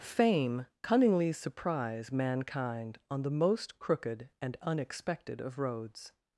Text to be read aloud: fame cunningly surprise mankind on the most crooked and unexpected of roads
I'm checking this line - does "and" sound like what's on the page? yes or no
yes